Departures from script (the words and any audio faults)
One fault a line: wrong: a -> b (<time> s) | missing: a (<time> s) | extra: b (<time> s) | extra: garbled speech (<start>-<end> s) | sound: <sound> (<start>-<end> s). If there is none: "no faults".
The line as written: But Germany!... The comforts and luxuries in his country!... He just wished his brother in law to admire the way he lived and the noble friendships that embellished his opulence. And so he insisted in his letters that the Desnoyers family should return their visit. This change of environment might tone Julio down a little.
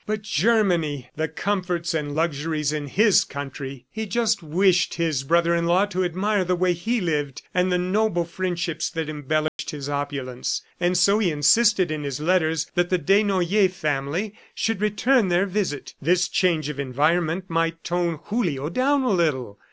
sound: dropout (9.5-9.6 s)